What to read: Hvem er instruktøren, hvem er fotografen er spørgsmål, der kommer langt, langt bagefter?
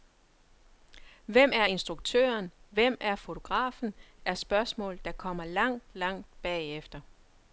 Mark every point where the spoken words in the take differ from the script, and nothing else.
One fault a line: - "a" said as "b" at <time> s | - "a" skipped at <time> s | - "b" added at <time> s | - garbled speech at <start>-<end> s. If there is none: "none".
none